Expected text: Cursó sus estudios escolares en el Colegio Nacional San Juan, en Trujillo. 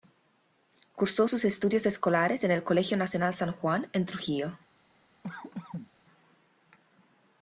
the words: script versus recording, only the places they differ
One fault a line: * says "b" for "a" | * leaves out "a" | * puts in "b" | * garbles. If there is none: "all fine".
all fine